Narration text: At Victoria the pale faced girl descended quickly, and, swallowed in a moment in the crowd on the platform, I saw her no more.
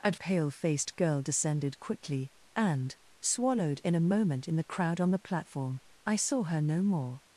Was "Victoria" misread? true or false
true